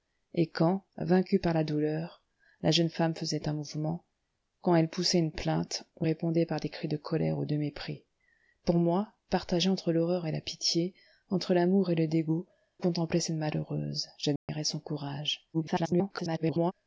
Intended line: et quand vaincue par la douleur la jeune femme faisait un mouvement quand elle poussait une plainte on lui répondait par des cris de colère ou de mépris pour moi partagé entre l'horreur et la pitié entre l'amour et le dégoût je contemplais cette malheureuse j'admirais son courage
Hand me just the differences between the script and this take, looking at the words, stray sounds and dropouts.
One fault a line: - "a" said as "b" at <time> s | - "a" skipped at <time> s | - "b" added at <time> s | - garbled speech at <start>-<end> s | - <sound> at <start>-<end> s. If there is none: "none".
- "lui" skipped at 6.1 s
- "je" skipped at 12.5 s
- dropout at 14.4-14.5 s
- garbled speech at 15.5-16.7 s